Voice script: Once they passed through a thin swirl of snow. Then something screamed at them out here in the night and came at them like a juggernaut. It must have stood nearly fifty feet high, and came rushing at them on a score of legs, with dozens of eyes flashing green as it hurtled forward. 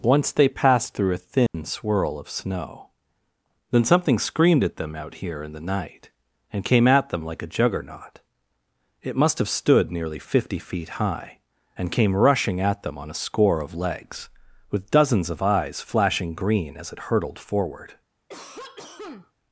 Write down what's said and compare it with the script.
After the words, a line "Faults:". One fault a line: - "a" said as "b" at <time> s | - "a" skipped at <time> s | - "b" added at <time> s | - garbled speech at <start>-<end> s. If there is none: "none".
Once they passed through a thin swirl of snow. Then something screamed at them out here in the night and came at them like a juggernaut. It must have stood nearly fifty feet high, and came rushing at them on a score of legs, with dozens of eyes flashing green as it hurtled forward.
Faults:
none